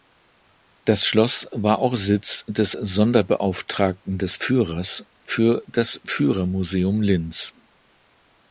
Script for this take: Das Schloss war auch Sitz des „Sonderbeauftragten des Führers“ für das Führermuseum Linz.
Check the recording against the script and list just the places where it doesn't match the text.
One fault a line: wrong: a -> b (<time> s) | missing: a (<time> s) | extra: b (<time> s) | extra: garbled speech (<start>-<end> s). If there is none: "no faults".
no faults